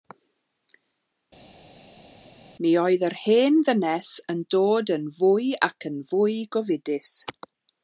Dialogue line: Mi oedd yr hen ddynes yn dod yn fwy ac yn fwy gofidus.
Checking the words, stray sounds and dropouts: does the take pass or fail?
pass